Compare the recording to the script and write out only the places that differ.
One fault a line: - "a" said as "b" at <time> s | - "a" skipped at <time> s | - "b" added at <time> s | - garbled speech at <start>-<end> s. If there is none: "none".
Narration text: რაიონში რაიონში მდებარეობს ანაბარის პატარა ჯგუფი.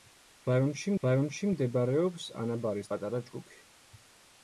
none